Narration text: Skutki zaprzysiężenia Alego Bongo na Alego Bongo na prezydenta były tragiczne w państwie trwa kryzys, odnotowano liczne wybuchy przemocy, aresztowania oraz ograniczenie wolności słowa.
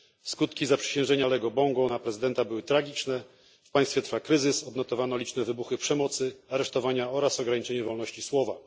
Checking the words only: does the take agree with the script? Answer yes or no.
no